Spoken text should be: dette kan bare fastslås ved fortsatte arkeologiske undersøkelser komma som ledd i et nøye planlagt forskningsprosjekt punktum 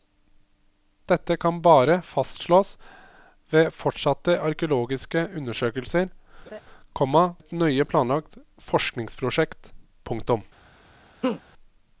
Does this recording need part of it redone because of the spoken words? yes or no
yes